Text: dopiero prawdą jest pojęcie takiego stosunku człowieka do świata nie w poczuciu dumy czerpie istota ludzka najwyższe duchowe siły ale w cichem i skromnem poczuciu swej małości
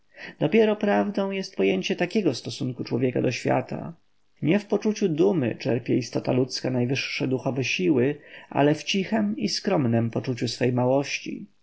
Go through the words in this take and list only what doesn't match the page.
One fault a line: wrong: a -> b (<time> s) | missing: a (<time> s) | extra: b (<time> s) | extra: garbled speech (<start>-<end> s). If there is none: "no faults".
no faults